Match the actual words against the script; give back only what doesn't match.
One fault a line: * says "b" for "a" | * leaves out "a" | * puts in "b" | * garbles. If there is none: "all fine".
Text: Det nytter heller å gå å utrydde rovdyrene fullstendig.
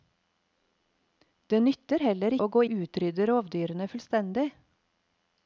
all fine